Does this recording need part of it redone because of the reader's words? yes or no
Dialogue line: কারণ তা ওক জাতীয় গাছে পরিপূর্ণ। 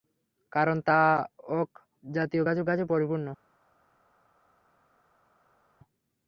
yes